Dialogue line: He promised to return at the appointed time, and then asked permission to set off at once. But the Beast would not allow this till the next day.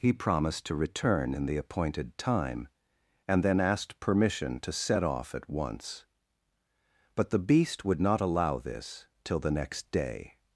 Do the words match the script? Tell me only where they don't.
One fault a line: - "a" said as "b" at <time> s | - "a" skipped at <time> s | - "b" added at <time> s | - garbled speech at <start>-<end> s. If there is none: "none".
- "at" said as "in" at 1.4 s